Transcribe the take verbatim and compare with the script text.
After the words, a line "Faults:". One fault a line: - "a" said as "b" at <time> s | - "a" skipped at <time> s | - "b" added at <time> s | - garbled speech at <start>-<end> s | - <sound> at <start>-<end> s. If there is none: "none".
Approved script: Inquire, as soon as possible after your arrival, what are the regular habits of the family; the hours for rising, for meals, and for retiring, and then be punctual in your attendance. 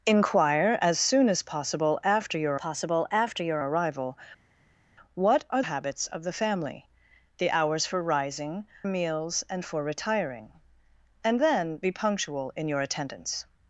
Inquire, as soon as possible after your possible after your arrival, what are habits of the family; the hours for rising, meals, and for retiring, and then be punctual in your attendance.
Faults:
- "possible after your" added at 2.5 s
- "the regular" skipped at 5.6 s
- "for" skipped at 8.7 s